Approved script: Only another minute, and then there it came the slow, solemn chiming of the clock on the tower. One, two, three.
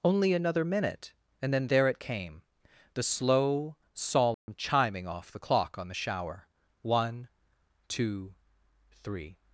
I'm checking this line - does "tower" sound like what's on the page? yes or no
no